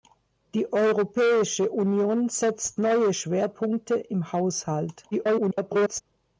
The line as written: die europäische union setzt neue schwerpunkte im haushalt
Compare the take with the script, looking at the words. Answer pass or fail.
fail